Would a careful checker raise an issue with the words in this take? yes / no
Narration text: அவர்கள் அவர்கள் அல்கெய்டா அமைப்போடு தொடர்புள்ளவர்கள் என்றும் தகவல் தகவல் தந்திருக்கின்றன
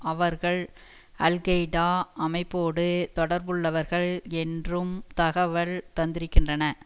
yes